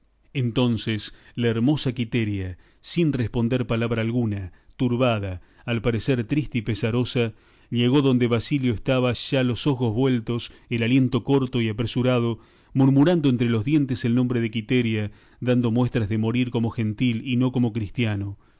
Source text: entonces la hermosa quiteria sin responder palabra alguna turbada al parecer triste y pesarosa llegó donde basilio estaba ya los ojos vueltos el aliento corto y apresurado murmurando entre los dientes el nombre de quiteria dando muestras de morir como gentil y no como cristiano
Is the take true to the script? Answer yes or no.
yes